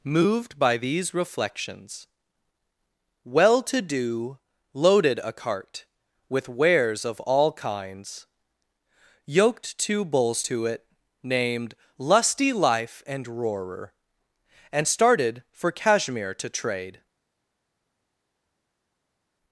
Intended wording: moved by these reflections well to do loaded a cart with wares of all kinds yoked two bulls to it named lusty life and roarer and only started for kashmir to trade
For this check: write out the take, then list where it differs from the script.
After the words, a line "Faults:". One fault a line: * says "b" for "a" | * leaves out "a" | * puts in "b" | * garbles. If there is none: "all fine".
moved by these reflections well to do loaded a cart with wares of all kinds yoked two bulls to it named lusty life and roarer and started for kashmir to trade
Faults:
* leaves out "only"